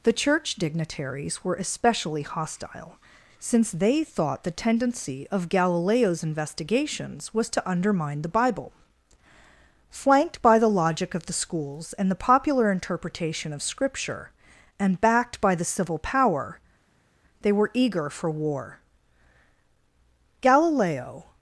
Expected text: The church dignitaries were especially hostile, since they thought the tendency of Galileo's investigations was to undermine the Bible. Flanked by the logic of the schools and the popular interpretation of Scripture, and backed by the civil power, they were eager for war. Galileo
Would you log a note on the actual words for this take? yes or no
no